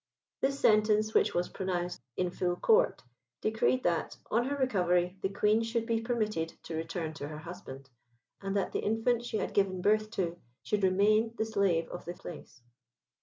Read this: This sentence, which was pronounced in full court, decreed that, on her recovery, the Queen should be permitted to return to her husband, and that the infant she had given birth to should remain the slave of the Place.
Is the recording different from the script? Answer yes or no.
no